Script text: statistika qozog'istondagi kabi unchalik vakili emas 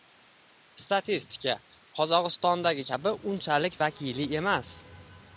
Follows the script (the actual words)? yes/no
yes